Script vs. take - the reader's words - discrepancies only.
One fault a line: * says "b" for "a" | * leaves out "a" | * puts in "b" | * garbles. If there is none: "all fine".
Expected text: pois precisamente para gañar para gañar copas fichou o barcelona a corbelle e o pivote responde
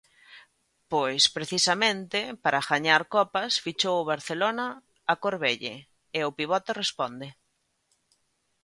* leaves out "para gañar"